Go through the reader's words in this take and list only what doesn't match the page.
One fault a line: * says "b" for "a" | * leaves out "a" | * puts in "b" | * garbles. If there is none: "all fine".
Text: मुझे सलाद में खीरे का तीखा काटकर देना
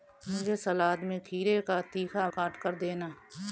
all fine